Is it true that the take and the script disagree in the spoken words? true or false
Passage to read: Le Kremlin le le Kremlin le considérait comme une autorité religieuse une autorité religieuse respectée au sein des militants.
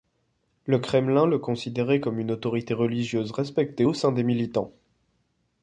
true